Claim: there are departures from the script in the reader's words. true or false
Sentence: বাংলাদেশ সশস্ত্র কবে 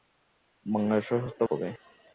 false